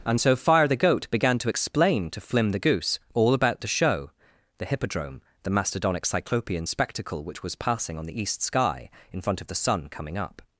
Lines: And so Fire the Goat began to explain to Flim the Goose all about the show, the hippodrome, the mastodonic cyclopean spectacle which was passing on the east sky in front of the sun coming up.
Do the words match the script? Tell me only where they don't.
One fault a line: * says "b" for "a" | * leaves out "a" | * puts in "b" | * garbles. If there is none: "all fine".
all fine